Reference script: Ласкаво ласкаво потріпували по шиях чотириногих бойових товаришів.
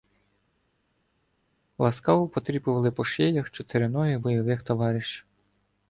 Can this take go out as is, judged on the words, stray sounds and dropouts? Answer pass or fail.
fail